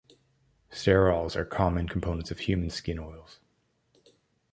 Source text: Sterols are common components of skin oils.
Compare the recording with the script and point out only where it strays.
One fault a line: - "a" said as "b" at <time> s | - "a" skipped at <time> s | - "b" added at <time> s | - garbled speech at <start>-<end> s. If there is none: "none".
- "human" added at 2.4 s